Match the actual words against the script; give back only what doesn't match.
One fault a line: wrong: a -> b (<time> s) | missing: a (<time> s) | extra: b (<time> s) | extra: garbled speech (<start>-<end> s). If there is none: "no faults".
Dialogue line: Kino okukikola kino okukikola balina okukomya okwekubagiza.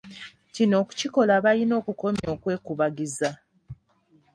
missing: kino okukikola (1.3 s)